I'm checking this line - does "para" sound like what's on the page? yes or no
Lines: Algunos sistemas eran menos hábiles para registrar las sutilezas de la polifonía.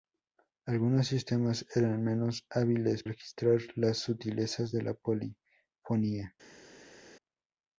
no